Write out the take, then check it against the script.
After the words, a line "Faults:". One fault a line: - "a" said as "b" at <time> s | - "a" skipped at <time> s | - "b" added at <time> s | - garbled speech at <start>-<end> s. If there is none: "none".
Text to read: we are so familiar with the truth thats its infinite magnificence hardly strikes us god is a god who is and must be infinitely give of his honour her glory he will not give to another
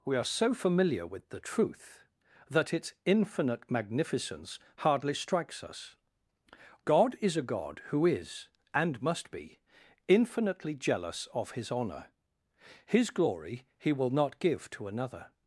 we are so familiar with the truth that its infinite magnificence hardly strikes us god is a god who is and must be infinitely jealous of his honour his glory he will not give to another
Faults:
- "thats" said as "that" at 2.5 s
- "give" said as "jealous" at 10.8 s
- "her" said as "his" at 12.9 s